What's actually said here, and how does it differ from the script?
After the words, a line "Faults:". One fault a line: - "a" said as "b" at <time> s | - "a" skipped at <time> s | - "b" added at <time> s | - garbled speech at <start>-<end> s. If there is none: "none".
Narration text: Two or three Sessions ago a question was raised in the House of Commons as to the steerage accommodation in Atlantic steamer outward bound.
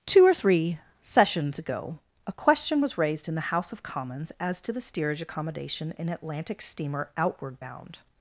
Two or three Sessions ago a question was raised in the House of Commons as to the steerage accommodation in Atlantic steamer outward bound.
Faults:
none